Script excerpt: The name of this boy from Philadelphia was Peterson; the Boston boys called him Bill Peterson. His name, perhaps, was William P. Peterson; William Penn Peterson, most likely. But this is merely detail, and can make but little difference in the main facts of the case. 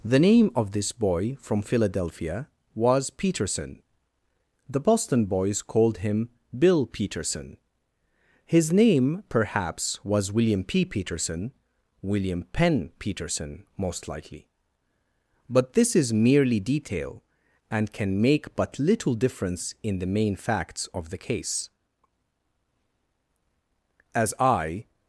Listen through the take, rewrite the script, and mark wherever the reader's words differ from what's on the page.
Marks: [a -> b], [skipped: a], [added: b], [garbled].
The name of this boy from Philadelphia was Peterson; the Boston boys called him Bill Peterson. His name, perhaps, was William P. Peterson; William Penn Peterson, most likely. But this is merely detail, and can make but little difference in the main facts of the case. [added: As I]